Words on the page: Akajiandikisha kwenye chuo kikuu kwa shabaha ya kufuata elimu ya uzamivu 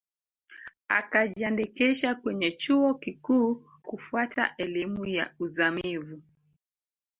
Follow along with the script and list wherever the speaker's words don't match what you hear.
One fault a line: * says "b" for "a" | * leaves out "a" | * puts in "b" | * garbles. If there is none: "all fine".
* leaves out "kwa shabaha ya"